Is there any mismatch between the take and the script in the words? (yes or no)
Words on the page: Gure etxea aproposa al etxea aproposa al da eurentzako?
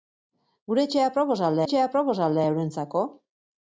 no